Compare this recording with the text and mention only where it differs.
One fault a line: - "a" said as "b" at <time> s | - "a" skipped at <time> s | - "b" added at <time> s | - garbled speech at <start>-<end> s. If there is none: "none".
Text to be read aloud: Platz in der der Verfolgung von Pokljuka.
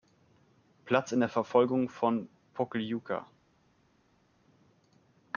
- "der" skipped at 1.3 s